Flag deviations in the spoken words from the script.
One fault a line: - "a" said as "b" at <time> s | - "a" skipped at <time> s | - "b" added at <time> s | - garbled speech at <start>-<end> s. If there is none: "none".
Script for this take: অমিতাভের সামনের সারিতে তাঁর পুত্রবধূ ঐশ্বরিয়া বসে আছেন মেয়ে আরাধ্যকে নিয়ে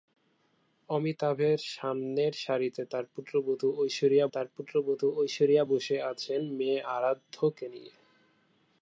- "তাঁর পুত্রবধূ ঐশ্বরিয়া" added at 4.3 s